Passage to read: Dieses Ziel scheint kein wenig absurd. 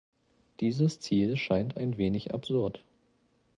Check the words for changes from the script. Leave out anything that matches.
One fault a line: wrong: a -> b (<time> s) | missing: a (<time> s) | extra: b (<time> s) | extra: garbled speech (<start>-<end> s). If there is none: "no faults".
wrong: kein -> ein (1.8 s)